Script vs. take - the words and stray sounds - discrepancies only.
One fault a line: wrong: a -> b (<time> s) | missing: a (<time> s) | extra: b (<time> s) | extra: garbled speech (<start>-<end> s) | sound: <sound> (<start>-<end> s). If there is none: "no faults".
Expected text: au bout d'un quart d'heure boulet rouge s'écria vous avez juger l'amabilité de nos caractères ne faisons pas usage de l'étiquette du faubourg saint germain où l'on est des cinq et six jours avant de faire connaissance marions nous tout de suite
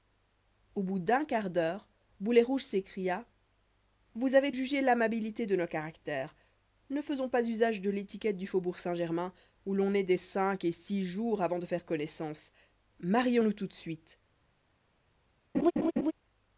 sound: laugh (15.5-16.1 s)